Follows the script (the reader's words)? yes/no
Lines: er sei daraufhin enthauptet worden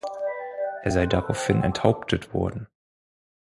yes